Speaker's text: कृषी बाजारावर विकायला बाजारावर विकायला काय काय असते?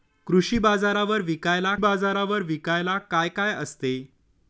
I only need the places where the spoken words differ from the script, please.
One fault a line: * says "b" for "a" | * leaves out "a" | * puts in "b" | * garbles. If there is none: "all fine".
all fine